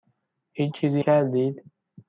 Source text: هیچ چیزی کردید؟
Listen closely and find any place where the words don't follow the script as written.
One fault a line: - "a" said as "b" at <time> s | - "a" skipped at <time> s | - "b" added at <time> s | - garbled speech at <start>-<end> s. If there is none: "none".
none